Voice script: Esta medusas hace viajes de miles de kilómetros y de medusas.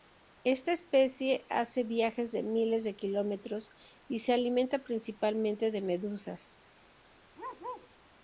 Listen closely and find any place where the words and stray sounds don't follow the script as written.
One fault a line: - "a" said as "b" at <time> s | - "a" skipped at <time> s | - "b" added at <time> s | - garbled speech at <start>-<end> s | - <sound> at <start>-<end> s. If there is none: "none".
- "medusas" said as "especie" at 0.7 s
- "se alimenta principalmente" added at 4.2 s
- bark at 7.3-7.9 s